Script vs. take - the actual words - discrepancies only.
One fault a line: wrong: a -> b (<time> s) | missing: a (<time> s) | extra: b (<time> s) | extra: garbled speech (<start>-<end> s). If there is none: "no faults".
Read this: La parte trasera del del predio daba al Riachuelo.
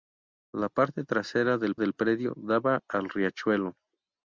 no faults